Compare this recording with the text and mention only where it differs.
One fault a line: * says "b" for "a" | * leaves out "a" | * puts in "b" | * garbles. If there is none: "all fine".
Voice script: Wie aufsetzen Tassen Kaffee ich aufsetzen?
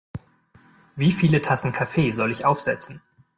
* says "viele" for "aufsetzen"
* puts in "soll"